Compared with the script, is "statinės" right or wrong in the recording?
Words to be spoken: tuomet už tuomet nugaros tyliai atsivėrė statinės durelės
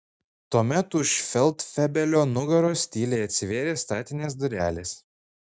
right